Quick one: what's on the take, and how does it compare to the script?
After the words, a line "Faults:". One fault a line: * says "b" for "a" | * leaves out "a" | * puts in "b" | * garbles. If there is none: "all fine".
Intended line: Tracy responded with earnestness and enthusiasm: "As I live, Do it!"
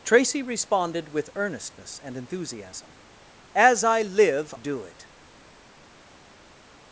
Tracy responded with earnestness and enthusiasm: "As I live, Do it!"
Faults:
all fine